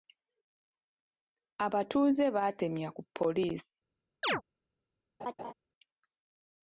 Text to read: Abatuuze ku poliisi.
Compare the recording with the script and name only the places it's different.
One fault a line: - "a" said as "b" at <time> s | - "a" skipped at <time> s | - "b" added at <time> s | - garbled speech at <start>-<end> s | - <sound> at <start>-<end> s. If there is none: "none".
- "baatemya" added at 2.4 s
- chirp at 4.2-4.4 s
- laugh at 5.2-5.5 s